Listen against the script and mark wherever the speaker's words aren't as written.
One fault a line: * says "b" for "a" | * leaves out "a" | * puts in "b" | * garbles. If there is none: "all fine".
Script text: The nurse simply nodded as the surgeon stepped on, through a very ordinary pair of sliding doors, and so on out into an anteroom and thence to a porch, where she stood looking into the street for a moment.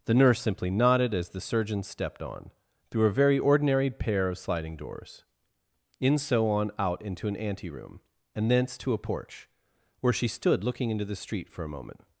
* says "in" for "and"